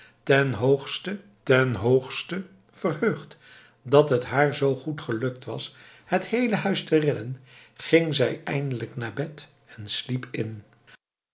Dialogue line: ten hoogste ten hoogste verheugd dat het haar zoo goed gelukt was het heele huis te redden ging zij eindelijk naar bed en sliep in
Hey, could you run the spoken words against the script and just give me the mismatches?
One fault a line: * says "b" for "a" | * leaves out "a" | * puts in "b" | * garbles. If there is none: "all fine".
all fine